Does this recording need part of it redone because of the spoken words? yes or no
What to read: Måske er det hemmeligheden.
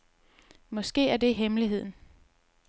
no